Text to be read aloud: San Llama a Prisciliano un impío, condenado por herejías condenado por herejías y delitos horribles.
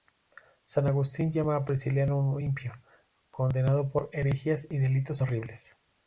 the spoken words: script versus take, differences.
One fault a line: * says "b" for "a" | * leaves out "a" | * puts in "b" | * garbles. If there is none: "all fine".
* puts in "Agustín"
* leaves out "condenado por herejías"